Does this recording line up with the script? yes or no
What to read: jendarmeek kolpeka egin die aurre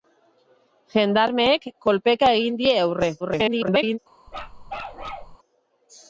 no